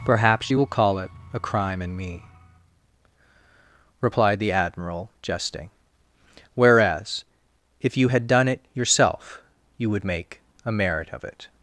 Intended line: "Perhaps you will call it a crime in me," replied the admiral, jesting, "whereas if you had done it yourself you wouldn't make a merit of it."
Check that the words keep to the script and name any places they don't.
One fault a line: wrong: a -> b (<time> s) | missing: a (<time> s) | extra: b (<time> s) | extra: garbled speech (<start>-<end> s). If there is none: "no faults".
wrong: wouldn't -> would (9.9 s)